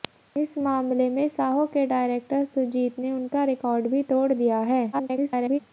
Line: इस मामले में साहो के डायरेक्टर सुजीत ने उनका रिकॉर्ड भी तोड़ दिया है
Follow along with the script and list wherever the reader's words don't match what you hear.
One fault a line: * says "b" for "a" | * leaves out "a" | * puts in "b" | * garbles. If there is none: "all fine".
* garbles